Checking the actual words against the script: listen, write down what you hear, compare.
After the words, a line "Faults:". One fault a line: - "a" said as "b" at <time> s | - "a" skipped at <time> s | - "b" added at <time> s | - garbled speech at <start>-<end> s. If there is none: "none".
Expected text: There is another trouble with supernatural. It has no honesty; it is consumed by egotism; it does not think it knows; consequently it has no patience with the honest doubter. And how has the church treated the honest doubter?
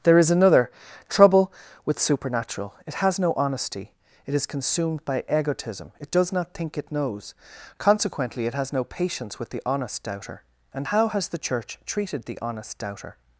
There is another trouble with supernatural. It has no honesty; it is consumed by egotism; it does not think it knows; consequently it has no patience with the honest doubter. And how has the church treated the honest doubter?
Faults:
none